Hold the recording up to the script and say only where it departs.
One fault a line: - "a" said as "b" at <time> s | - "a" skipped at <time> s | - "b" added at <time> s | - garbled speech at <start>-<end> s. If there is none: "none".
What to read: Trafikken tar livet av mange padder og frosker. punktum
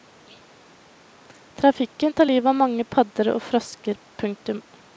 none